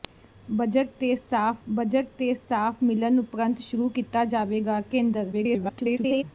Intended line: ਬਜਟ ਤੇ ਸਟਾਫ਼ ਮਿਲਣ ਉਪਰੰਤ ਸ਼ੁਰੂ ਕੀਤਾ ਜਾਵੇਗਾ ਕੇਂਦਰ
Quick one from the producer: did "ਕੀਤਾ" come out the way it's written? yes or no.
yes